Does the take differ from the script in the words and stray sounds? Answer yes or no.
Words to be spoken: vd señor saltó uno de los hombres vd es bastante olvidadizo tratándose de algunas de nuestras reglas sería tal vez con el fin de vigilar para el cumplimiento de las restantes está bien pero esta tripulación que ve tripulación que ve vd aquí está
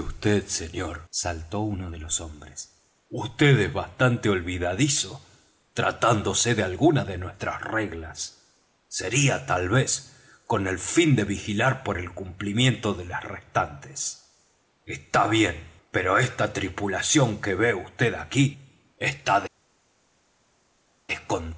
yes